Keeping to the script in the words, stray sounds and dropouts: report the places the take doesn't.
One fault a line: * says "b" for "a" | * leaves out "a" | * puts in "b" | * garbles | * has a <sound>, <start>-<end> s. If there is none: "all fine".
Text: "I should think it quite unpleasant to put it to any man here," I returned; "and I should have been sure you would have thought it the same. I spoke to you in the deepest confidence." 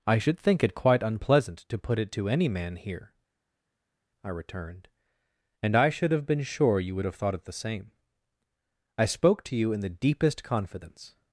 all fine